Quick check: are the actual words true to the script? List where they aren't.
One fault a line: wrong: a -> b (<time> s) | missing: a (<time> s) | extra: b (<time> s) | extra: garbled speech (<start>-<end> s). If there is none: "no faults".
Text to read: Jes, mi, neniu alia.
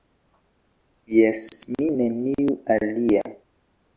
no faults